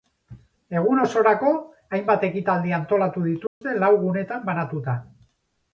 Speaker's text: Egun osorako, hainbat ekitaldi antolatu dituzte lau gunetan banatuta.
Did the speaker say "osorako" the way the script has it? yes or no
yes